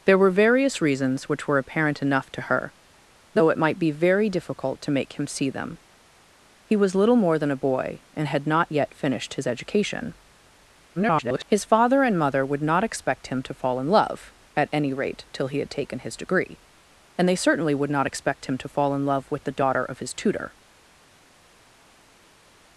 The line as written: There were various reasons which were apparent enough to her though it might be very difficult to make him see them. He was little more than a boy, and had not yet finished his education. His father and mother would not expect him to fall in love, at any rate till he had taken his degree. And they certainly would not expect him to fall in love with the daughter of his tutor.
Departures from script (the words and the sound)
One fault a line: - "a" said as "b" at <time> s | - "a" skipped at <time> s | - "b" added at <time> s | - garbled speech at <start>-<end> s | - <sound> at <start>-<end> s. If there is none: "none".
- garbled speech at 11.0-11.5 s